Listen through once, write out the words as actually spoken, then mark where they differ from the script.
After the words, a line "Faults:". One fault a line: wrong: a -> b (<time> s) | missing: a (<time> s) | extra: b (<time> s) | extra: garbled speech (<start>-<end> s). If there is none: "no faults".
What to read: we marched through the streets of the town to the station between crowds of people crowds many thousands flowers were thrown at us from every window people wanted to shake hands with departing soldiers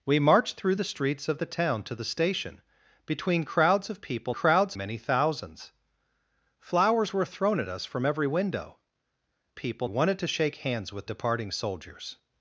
we marched through the streets of the town to the station between crowds of people crowds many thousands flowers were thrown at us from every window people wanted to shake hands with departing soldiers
Faults:
no faults